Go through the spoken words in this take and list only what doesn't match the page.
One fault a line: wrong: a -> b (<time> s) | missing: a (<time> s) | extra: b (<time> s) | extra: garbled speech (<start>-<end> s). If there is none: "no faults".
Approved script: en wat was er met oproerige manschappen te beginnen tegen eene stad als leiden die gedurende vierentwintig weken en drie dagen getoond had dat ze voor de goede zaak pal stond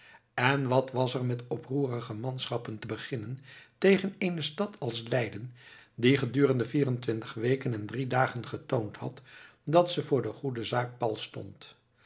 no faults